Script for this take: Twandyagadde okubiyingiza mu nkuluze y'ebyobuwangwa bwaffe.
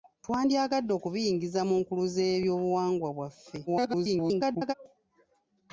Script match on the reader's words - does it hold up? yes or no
no